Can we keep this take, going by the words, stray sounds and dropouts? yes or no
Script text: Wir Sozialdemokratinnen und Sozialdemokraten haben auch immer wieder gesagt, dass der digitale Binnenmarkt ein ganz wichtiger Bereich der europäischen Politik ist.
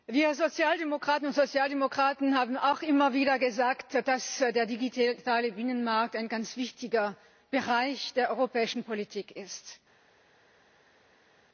yes